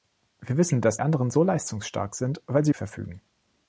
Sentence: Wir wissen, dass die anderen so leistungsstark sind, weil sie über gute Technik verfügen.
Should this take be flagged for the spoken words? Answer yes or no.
yes